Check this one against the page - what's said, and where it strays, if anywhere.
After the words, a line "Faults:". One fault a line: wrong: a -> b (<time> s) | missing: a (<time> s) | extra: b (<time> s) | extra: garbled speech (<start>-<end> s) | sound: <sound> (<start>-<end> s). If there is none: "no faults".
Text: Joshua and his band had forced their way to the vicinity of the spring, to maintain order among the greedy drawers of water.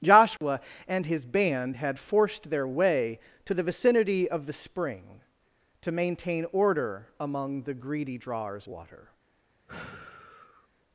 Joshua and his band had forced their way to the vicinity of the spring, to maintain order among the greedy drawers water.
Faults:
sound: dropout (0.4-0.4 s)
missing: of (8.7 s)
sound: sigh (9.7-10.7 s)